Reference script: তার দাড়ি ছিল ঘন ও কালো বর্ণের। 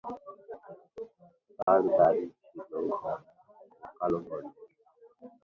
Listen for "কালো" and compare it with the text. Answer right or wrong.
right